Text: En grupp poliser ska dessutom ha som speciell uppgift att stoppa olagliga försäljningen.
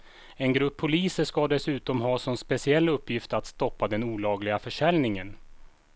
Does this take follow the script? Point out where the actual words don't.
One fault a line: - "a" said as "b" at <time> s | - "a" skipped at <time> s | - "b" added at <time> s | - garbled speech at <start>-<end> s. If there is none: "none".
- "den" added at 3.9 s